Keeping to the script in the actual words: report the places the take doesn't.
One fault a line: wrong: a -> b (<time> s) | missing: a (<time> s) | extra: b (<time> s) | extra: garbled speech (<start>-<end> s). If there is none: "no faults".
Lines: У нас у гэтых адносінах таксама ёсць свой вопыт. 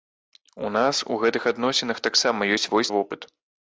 no faults